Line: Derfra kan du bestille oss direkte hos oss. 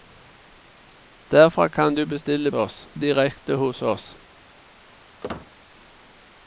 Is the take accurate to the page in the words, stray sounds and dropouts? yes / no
no